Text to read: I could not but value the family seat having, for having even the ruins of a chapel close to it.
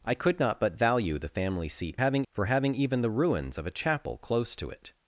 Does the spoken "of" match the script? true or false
true